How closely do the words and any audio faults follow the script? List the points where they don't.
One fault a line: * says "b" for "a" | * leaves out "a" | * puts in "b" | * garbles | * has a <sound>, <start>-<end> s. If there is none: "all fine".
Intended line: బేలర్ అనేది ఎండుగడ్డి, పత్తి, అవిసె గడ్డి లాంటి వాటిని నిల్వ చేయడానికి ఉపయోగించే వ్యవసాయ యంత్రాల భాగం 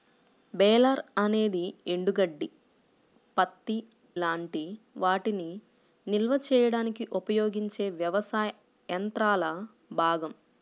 * leaves out "అవిసె గడ్డి"